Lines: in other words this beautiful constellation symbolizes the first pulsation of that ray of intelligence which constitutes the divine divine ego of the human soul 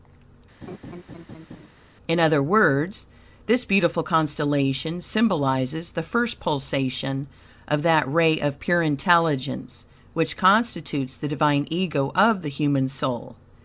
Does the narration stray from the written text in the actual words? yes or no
yes